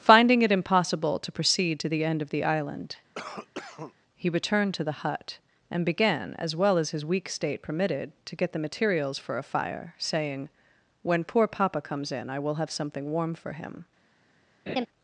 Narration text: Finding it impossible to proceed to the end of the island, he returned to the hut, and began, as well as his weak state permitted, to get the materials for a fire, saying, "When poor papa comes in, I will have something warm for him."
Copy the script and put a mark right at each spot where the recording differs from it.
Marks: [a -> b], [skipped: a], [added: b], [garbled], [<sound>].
Finding it impossible to proceed to the end of the island, [cough] he returned to the hut, and began, as well as his weak state permitted, to get the materials for a fire, saying, "When poor papa comes in, I will have something warm for him." [laugh]